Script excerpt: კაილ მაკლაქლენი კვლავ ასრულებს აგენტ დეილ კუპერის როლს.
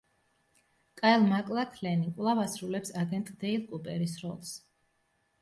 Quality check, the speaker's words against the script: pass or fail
pass